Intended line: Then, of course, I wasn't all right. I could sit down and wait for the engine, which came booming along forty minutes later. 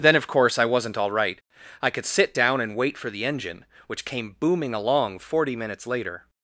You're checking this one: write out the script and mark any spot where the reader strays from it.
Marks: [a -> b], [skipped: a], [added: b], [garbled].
Then, of course, I wasn't all right. I could sit down and wait for the engine, which came booming along forty minutes later.